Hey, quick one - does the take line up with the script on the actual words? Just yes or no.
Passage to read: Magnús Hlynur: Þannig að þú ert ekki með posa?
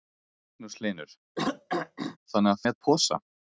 no